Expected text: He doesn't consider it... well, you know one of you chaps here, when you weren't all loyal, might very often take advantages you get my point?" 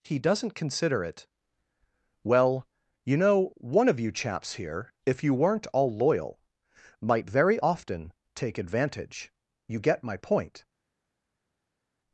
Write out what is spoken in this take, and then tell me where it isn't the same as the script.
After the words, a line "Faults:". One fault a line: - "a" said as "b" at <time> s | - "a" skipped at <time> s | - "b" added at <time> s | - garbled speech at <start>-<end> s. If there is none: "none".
He doesn't consider it... well, you know one of you chaps here, if you weren't all loyal, might very often take advantage you get my point?"
Faults:
- "when" said as "if" at 5.1 s
- "advantages" said as "advantage" at 8.6 s